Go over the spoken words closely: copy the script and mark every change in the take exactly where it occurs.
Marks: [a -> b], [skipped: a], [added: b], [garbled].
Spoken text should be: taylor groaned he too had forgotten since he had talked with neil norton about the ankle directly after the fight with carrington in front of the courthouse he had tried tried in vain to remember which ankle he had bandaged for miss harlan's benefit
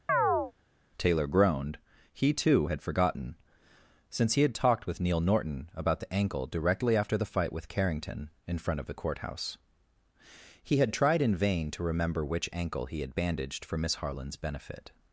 taylor groaned he too had forgotten since he had talked with neil norton about the ankle directly after the fight with carrington in front of the courthouse he had tried [skipped: tried] in vain to remember which ankle he had bandaged for miss harlan's benefit